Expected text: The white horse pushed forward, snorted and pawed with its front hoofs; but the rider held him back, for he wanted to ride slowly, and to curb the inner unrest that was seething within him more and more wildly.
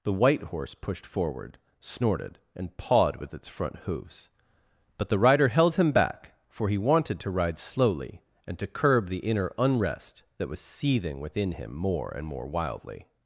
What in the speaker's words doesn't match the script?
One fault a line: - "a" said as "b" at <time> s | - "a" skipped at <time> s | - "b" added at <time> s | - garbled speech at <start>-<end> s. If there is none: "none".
none